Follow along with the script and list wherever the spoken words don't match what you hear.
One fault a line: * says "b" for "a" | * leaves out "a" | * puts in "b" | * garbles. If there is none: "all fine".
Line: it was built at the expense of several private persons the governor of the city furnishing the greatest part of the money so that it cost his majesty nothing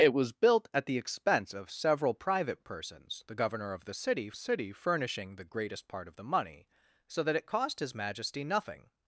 * puts in "city"